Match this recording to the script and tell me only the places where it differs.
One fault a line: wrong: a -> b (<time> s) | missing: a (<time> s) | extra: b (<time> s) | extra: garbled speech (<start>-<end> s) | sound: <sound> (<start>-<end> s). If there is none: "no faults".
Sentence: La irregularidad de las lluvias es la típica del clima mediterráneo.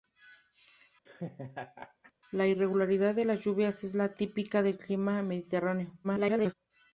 sound: laugh (1.1-2.1 s)
extra: garbled speech (6.0-6.5 s)